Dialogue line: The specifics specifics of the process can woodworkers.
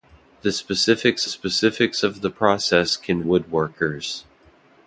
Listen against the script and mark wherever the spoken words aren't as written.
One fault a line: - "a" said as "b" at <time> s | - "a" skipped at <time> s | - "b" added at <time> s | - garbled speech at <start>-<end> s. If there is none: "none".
none